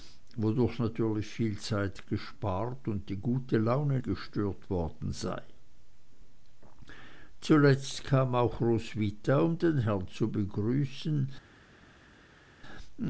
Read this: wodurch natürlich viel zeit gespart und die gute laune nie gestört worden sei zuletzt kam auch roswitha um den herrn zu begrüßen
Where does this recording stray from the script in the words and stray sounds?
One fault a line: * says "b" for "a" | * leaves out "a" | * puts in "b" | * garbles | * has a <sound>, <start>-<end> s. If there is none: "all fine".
* leaves out "nie"